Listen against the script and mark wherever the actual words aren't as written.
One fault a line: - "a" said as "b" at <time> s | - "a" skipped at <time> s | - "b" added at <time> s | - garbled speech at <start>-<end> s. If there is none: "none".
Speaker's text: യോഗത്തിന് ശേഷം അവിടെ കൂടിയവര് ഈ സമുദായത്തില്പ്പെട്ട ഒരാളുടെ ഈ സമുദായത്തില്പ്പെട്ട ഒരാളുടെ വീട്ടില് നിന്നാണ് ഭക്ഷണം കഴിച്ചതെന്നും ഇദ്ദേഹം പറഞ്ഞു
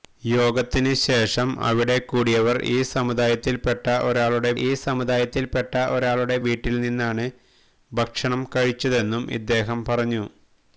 none